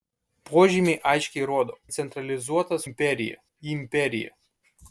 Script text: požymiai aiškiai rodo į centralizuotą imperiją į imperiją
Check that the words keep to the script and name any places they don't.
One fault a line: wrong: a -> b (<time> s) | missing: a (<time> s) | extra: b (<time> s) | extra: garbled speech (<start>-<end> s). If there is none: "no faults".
no faults